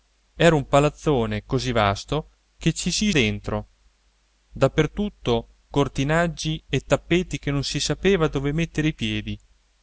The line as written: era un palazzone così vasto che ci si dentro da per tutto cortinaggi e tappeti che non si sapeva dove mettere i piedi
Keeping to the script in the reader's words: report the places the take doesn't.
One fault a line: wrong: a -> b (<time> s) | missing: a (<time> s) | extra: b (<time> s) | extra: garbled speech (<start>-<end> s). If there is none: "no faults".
no faults